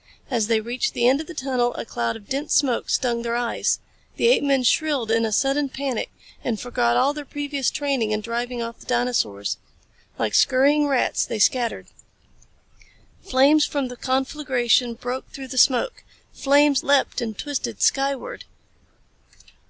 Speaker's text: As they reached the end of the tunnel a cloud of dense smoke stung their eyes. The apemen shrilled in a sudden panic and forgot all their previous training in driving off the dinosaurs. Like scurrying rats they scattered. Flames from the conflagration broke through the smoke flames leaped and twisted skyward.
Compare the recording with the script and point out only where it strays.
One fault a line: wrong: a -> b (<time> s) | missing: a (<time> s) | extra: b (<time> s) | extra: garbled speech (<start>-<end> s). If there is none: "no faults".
no faults